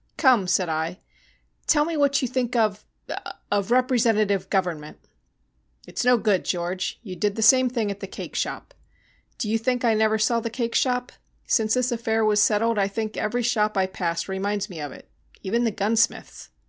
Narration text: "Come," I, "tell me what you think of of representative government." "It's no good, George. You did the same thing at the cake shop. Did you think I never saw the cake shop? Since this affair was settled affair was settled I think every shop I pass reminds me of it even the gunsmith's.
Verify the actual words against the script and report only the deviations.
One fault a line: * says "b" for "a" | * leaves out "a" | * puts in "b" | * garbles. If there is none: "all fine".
* puts in "said"
* says "Do" for "Did"
* leaves out "affair was settled"